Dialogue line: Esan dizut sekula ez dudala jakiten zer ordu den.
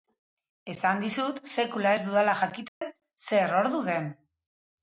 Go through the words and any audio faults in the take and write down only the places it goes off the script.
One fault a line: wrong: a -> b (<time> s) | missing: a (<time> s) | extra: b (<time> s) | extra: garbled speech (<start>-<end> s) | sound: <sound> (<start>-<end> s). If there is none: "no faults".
sound: dropout (2.7-2.8 s)